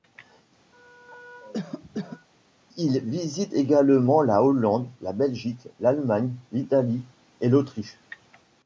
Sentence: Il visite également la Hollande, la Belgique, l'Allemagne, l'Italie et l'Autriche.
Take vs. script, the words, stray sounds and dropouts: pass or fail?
fail